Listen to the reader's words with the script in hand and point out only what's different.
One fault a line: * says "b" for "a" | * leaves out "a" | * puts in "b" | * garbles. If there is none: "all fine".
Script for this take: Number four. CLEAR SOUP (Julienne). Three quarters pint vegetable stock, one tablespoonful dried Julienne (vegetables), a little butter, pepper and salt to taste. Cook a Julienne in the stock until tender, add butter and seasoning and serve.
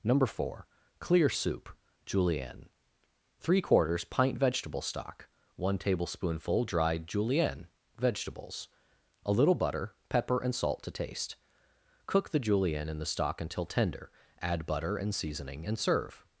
* says "the" for "a"